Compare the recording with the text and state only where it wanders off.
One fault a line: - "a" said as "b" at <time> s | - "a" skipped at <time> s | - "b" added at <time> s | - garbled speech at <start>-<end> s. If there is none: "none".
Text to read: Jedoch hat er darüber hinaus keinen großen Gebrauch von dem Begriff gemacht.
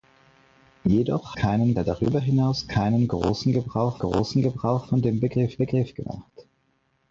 - "hat" said as "keinen" at 1.3 s
- "großen Gebrauch" added at 4.0 s
- "Begriff" added at 5.6 s